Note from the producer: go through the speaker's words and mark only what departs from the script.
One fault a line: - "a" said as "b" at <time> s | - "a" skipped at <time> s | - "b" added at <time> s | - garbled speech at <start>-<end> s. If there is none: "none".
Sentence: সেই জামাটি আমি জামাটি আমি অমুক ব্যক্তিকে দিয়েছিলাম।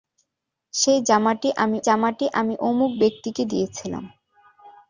none